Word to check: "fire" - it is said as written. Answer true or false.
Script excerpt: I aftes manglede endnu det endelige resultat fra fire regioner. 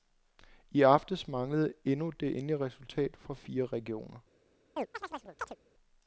true